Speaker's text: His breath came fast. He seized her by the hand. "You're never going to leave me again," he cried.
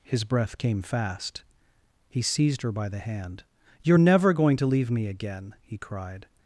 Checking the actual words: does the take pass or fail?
pass